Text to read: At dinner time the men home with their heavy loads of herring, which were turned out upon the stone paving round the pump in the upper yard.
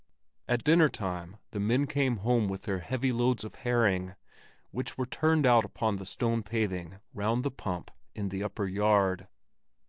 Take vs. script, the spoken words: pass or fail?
fail